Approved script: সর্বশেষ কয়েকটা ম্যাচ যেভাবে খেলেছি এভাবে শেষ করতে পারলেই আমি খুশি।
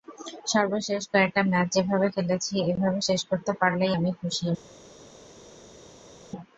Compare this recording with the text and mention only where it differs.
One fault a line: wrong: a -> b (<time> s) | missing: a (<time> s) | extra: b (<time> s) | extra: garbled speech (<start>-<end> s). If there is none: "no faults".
no faults